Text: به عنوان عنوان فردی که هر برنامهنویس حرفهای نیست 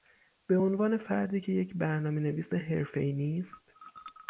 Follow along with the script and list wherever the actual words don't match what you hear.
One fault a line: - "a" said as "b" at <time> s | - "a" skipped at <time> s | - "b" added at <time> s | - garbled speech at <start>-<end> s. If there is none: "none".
- "عنوان" skipped at 1.0 s
- "هر" said as "یک" at 1.5 s